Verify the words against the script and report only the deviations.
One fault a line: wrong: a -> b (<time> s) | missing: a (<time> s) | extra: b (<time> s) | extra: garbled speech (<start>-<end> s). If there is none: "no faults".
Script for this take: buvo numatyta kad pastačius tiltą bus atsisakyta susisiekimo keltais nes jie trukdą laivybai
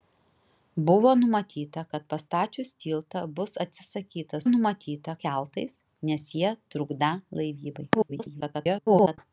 wrong: susisiekimo -> numatyta (4.5 s)
extra: garbled speech (7.9-9.2 s)